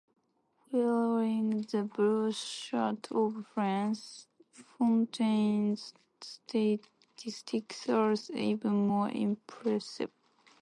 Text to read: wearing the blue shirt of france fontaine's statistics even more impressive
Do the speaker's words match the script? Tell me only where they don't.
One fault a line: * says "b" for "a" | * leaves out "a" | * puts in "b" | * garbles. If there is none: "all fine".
* puts in "are"